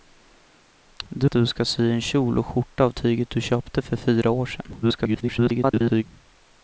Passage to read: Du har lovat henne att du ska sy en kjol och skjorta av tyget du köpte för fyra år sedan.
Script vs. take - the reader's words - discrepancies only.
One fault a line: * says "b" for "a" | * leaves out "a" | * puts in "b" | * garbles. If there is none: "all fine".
* leaves out "har lovat henne"
* garbles